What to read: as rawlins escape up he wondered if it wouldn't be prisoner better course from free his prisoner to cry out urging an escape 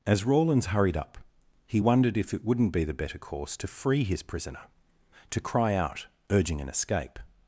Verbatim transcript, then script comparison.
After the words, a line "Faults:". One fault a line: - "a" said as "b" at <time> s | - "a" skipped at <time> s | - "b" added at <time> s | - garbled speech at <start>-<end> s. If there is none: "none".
as rawlins hurried up he wondered if it wouldn't be the better course to free his prisoner to cry out urging an escape
Faults:
- "escape" said as "hurried" at 0.7 s
- "prisoner" said as "the" at 2.8 s
- "from" said as "to" at 3.6 s